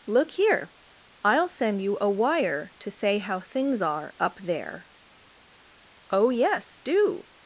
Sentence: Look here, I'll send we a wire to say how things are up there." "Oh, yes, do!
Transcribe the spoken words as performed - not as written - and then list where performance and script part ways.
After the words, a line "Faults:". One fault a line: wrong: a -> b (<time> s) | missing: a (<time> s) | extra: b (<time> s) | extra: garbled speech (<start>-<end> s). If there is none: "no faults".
Look here, I'll send you a wire to say how things are up there." "Oh, yes, do!
Faults:
wrong: we -> you (1.8 s)